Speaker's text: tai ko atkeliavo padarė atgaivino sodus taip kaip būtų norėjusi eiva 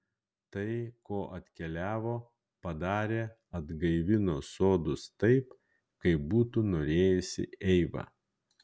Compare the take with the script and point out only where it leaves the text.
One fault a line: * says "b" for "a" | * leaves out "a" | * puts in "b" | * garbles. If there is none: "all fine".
all fine